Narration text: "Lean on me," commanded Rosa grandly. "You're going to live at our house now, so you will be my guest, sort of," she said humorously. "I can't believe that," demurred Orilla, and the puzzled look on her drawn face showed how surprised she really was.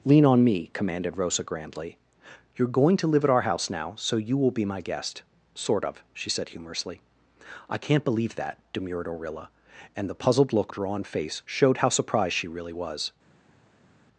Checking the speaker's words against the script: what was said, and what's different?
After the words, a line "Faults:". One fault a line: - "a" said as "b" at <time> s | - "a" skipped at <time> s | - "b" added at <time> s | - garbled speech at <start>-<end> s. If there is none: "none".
"Lean on me," commanded Rosa grandly. "You're going to live at our house now, so you will be my guest, sort of," she said humorously. "I can't believe that," demurred Orilla, and the puzzled look drawn face showed how surprised she really was.
Faults:
- "on her" skipped at 10.7 s